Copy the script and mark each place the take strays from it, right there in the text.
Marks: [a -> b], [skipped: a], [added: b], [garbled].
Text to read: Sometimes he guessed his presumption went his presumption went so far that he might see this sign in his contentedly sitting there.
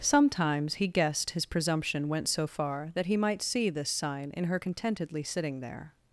Sometimes he guessed his presumption went [skipped: his presumption went] so far that he might see this sign in [his -> her] contentedly sitting there.